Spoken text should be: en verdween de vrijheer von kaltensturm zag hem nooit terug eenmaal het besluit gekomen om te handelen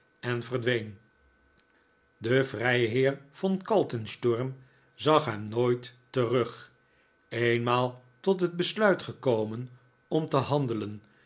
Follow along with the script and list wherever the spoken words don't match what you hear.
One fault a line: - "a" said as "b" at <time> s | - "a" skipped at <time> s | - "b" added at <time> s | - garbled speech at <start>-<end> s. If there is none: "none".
- "tot" added at 8.2 s